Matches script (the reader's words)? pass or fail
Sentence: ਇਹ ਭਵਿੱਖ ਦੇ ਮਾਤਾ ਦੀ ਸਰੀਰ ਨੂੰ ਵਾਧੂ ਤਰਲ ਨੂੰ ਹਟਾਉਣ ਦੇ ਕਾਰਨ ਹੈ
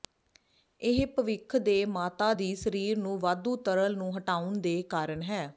pass